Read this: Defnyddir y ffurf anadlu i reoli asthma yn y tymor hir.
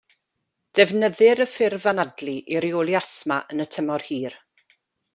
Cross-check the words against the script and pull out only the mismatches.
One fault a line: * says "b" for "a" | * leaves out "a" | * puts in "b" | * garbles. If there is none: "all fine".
all fine